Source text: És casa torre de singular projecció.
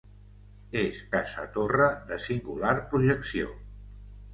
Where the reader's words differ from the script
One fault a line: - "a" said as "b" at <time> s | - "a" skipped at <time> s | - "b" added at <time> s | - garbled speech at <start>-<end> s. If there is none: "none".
none